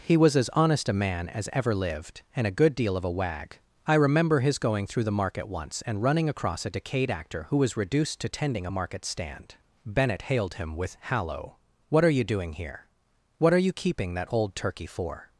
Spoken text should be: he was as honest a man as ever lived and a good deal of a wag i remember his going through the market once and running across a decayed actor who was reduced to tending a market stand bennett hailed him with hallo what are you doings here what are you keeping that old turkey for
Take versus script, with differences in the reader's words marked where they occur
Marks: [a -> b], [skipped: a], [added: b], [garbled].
he was as honest a man as ever lived and a good deal of a wag i remember his going through the market once and running across a decayed actor who was reduced to tending a market stand bennett hailed him with hallo what are you [doings -> doing] here what are you keeping that old turkey for